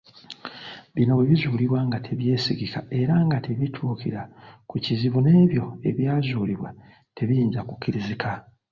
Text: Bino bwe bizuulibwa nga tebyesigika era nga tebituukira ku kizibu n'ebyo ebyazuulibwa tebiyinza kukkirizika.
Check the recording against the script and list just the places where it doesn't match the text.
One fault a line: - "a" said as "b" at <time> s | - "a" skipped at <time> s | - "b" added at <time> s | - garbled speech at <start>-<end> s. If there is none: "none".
none